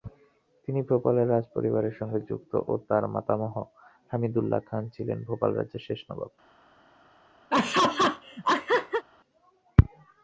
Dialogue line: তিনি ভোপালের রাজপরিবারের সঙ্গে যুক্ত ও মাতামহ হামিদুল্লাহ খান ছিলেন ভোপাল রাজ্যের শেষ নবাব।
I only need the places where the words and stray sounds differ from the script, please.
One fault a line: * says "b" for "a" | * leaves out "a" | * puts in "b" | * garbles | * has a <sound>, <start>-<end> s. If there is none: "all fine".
* puts in "তার"
* has a laugh, 7.5-9.0 s